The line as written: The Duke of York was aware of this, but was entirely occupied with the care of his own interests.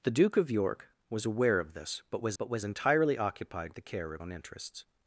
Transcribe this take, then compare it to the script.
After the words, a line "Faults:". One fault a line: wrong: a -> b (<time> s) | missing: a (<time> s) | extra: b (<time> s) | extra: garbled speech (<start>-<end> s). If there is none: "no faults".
The Duke of York was aware of this, but was but was entirely occupied the care of own interests.
Faults:
extra: but was (2.4 s)
missing: with (3.8 s)
missing: his (4.2 s)